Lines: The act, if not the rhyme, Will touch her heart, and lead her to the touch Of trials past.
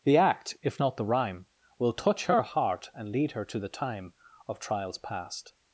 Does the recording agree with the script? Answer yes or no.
no